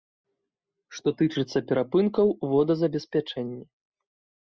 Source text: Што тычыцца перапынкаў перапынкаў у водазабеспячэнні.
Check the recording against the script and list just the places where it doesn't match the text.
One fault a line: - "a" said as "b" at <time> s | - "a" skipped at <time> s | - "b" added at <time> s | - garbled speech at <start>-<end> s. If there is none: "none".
- "перапынкаў" skipped at 2.4 s